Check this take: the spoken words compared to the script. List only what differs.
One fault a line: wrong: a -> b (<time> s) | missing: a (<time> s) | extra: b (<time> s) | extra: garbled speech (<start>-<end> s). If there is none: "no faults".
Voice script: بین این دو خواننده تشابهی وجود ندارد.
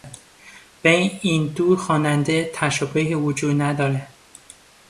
no faults